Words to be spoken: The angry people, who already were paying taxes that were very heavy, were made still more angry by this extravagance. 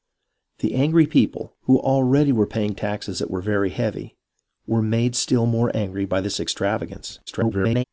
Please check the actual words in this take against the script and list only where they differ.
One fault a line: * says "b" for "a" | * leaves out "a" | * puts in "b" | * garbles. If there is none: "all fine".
* garbles